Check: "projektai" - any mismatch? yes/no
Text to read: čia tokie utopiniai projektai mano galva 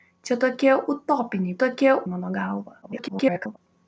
yes